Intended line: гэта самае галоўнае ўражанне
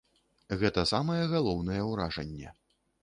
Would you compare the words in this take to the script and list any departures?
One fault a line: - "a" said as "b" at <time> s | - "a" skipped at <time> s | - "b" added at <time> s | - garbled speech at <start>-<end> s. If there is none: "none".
none